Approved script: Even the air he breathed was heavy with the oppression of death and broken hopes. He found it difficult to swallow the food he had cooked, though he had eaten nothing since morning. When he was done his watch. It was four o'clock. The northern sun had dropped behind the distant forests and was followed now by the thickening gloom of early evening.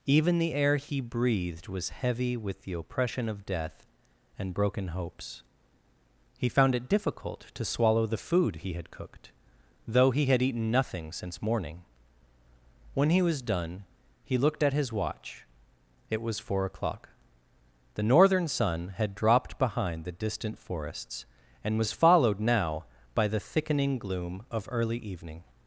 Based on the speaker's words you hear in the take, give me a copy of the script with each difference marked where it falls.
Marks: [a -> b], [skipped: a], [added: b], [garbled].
Even the air he breathed was heavy with the oppression of death and broken hopes. He found it difficult to swallow the food he had cooked, though he had eaten nothing since morning. When he was done [added: he looked at] his watch. It was four o'clock. The northern sun had dropped behind the distant forests and was followed now by the thickening gloom of early evening.